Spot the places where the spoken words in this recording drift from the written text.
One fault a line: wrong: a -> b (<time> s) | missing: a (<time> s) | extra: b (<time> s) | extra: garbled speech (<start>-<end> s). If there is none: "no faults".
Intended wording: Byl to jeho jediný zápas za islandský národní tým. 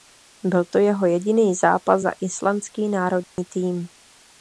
no faults